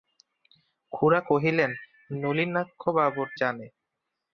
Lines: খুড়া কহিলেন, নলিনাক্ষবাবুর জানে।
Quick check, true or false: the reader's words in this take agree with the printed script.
true